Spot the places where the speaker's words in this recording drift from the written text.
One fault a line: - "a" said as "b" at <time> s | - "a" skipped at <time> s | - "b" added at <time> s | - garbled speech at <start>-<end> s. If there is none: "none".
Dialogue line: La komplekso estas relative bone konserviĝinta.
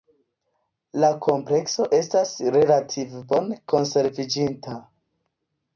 none